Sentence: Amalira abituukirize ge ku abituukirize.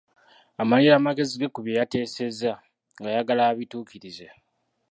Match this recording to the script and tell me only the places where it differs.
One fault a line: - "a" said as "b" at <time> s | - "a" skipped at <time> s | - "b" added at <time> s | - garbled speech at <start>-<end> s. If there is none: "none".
- "abituukirize" said as "amagezi" at 1.0 s
- "bye yateesezza ng'ayagala" added at 1.6 s